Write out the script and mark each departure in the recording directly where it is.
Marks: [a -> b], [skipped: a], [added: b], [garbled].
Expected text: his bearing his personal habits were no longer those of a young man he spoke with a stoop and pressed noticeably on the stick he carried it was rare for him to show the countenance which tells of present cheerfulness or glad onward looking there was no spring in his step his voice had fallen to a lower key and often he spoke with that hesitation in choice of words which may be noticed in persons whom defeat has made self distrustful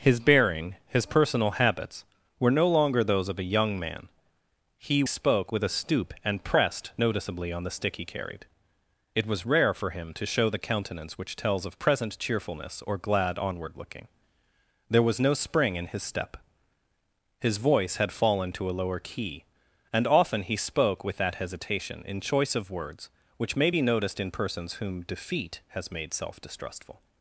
his bearing his personal habits were no longer those of a young man he spoke with a stoop and pressed noticeably on the stick he carried it was rare for him to show the countenance which tells of present cheerfulness or glad onward looking there was no spring in his step his voice had fallen to a lower key and often he spoke with that hesitation in choice of words which may be noticed in persons whom defeat has made self distrustful